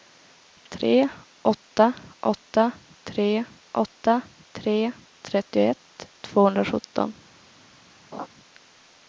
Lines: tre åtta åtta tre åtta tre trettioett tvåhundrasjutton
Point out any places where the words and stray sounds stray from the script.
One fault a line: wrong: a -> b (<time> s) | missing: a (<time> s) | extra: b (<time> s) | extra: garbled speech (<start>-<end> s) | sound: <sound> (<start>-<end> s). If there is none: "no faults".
sound: laugh (8.1-8.3 s)